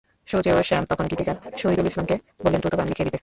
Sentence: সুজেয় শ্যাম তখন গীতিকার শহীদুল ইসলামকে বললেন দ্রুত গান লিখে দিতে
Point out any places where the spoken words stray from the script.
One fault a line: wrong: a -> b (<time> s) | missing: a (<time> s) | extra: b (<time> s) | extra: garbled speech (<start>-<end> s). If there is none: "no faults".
no faults